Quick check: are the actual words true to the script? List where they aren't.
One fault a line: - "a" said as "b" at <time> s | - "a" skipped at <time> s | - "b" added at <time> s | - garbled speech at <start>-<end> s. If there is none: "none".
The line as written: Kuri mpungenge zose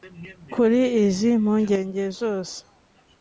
- "izi" added at 1.0 s